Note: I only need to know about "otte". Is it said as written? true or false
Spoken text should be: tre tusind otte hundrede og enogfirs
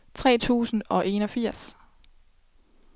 false